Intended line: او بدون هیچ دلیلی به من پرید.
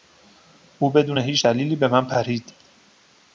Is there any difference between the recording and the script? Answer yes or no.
no